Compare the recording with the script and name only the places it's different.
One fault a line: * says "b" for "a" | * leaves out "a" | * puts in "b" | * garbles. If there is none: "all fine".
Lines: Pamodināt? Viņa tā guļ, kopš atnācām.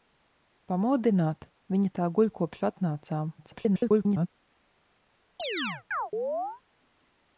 * garbles